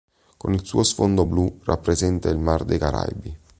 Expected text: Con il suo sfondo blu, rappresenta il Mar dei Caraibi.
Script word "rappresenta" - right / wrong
right